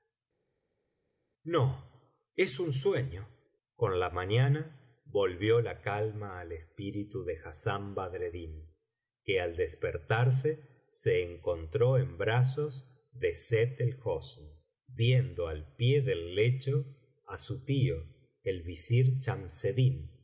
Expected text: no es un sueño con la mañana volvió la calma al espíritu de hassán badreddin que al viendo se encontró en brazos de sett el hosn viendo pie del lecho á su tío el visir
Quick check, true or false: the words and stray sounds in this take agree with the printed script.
false